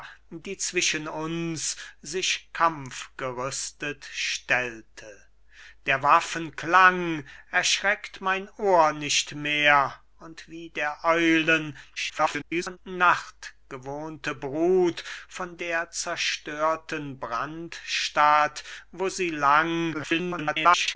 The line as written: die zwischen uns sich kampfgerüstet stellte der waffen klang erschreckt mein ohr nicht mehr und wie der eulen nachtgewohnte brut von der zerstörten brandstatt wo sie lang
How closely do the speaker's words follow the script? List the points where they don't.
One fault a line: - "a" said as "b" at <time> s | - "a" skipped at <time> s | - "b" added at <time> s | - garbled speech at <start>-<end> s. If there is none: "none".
- garbled speech at 12.0-12.8 s
- garbled speech at 19.9-21.0 s